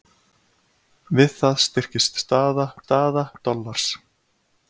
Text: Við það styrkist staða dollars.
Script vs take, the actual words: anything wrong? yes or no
yes